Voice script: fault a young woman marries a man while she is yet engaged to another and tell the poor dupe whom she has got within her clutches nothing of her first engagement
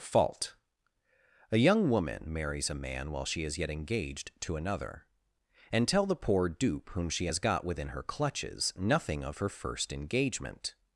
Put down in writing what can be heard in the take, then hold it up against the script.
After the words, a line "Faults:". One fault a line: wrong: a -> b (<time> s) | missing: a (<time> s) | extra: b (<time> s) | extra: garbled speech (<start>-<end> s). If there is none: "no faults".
fault a young woman marries a man while she is yet engaged to another and tell the poor dupe whom she has got within her clutches nothing of her first engagement
Faults:
no faults